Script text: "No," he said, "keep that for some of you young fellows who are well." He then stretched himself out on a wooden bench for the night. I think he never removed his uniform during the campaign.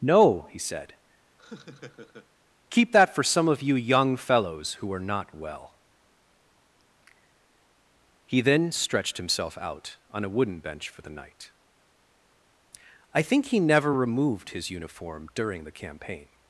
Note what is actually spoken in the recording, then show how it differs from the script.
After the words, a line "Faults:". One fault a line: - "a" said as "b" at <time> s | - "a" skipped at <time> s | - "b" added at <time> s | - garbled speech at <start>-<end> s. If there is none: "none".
"No," he said, "keep that for some of you young fellows who are not well." He then stretched himself out on a wooden bench for the night. I think he never removed his uniform during the campaign.
Faults:
- "not" added at 5.0 s